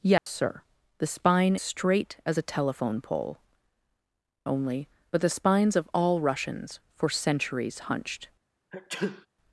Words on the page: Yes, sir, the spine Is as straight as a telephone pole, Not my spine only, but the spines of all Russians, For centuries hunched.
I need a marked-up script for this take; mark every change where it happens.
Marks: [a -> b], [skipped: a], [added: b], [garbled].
Yes, sir, the spine [skipped: Is as] straight as a telephone pole, [skipped: Not my spine] only, but the spines of all Russians, For centuries hunched.